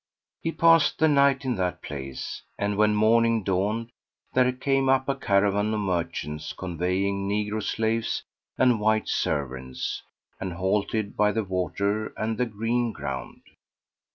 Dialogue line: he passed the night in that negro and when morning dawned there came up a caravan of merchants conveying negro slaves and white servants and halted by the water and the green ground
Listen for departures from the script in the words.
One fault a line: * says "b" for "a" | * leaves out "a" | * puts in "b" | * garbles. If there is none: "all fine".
* says "place" for "negro"